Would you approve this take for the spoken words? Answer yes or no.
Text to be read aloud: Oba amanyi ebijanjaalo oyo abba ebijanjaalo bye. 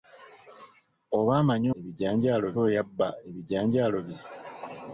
yes